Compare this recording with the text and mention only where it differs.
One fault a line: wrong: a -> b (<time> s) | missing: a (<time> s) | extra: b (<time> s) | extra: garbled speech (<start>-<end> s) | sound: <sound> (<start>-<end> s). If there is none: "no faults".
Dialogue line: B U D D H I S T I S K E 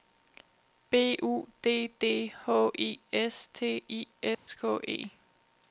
sound: dropout (4.3-4.5 s)